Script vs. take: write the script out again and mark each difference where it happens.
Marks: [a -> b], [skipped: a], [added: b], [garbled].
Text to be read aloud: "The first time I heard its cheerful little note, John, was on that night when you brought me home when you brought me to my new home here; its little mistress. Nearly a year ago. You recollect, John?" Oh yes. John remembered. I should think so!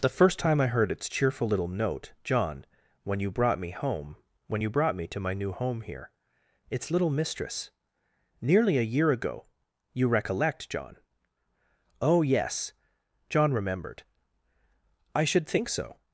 "The first time I heard its cheerful little note, John, [skipped: was on that night] when you brought me home when you brought me to my new home here; its little mistress. Nearly a year ago. You recollect, John?" Oh yes. John remembered. I should think so!